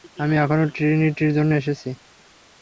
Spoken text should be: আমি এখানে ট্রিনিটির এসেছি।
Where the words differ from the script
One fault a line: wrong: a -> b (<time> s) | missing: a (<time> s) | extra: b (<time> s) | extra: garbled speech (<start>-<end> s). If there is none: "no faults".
extra: জন্য (1.4 s)